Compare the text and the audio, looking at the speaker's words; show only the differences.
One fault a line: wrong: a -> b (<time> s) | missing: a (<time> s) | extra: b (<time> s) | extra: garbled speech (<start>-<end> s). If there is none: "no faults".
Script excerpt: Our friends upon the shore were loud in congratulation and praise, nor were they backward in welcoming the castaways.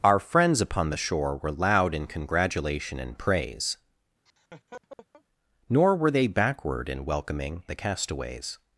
no faults